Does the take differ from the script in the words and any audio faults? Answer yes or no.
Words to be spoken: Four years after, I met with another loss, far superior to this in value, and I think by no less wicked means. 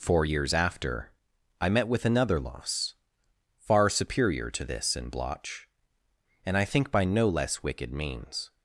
yes